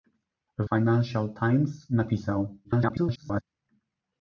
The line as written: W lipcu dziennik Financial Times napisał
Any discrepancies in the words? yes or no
yes